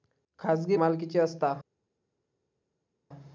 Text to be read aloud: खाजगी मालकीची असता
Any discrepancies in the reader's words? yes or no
no